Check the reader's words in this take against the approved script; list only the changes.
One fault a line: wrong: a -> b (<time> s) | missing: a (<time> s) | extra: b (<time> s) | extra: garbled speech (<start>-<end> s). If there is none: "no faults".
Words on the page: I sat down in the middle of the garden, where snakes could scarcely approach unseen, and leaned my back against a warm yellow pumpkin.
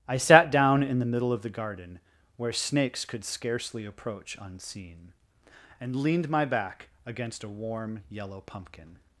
no faults